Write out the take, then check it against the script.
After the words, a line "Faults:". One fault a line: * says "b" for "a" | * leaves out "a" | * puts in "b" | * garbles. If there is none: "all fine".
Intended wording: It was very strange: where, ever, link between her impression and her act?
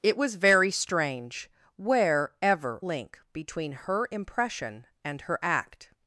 It was very strange: where, ever, link between her impression and her act?
Faults:
all fine